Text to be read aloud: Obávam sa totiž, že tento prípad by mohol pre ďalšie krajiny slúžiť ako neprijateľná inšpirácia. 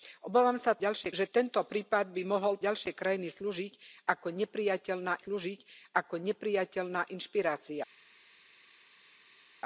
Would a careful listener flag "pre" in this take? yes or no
yes